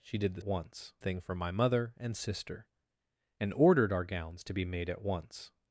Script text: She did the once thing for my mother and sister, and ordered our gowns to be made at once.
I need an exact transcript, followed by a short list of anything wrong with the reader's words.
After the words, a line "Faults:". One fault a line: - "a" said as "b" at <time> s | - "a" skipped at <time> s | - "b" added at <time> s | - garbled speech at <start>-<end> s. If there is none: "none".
She did the once thing for my mother and sister, and ordered our gowns to be made at once.
Faults:
none